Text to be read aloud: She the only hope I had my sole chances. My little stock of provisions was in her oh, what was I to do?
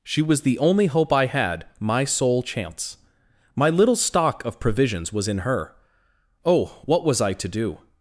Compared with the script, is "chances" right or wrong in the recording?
wrong